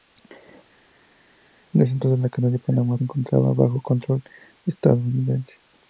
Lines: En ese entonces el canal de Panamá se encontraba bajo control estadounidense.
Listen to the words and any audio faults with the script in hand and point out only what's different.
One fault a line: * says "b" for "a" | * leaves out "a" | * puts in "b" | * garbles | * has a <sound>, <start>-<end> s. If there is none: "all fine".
* leaves out "se"